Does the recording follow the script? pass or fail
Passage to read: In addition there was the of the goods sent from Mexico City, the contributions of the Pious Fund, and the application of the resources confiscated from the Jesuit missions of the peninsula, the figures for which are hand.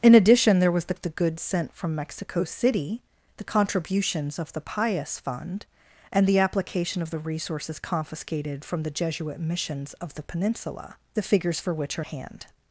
pass